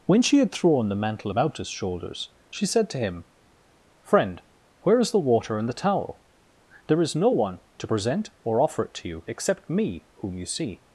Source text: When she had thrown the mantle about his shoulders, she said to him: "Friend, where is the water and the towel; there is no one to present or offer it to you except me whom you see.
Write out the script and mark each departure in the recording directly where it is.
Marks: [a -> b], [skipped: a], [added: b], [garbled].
When she had thrown the mantle about his shoulders, she said to him: "Friend, where is the water and the towel; there is no one to present or offer it to you except me whom you see.